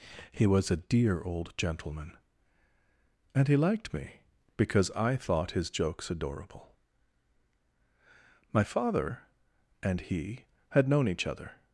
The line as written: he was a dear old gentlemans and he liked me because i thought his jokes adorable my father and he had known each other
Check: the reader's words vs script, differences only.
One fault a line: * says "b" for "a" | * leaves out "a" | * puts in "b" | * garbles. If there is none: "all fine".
* says "gentleman" for "gentlemans"